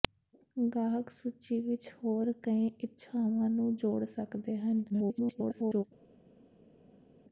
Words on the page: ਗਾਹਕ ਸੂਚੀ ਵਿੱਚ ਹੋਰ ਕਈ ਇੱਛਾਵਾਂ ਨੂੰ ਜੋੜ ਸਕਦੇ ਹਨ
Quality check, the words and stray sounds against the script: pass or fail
fail